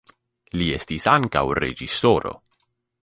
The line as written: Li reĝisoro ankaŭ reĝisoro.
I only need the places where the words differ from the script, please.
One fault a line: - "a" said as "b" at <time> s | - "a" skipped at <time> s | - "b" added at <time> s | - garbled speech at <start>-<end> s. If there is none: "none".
- "reĝisoro" said as "estis" at 0.7 s